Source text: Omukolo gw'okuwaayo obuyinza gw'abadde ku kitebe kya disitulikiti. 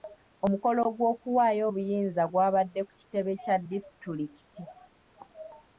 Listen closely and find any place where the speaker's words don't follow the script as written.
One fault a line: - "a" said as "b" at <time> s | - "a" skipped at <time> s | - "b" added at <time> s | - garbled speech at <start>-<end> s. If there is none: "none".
none